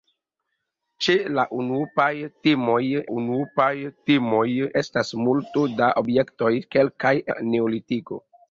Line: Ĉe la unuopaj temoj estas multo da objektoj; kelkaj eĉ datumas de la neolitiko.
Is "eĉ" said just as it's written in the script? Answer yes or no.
no